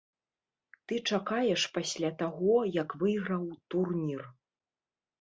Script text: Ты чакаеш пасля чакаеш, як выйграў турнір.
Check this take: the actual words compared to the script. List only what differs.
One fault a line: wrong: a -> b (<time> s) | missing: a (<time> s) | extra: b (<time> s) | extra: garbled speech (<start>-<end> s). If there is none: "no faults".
wrong: чакаеш -> таго (2.2 s)